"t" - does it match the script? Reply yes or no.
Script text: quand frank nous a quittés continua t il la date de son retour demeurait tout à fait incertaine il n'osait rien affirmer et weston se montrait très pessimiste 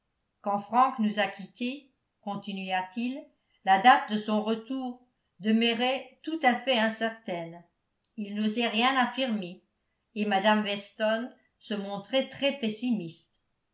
yes